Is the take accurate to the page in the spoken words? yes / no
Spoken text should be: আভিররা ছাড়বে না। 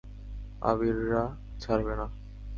yes